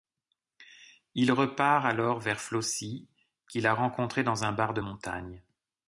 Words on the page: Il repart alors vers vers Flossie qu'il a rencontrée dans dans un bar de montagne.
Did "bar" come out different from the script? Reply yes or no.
no